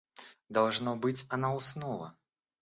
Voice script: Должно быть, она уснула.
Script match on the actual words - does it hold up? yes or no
yes